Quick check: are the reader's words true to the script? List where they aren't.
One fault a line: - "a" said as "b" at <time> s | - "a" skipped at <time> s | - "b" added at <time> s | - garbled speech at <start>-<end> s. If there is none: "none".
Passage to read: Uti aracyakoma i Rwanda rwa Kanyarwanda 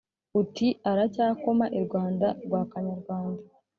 none